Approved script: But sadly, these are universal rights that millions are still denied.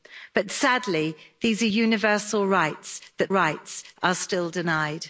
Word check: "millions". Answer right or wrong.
wrong